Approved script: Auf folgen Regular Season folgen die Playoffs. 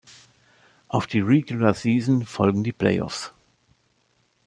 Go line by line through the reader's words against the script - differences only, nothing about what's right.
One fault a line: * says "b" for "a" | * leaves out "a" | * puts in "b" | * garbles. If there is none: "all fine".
* says "die" for "folgen"